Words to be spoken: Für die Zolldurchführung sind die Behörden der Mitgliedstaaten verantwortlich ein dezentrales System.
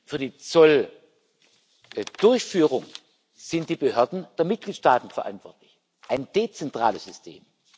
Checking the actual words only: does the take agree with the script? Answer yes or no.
yes